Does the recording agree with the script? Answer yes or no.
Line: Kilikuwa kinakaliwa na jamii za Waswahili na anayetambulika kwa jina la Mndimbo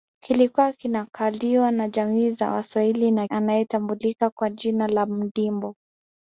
yes